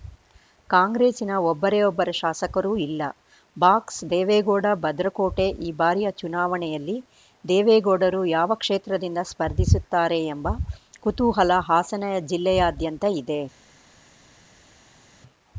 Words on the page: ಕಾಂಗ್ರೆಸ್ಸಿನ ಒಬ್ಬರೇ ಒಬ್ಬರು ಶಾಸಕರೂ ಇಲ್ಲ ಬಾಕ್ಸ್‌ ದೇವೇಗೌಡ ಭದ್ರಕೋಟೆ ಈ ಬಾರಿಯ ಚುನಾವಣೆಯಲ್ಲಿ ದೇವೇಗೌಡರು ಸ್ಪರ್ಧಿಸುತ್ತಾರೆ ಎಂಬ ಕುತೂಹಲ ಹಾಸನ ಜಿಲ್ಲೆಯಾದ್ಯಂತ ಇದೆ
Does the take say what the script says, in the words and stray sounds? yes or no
no